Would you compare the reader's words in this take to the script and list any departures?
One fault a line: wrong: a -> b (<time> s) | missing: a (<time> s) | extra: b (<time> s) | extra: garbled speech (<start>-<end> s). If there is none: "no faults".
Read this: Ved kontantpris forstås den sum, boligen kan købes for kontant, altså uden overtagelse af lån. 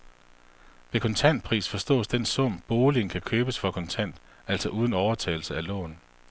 no faults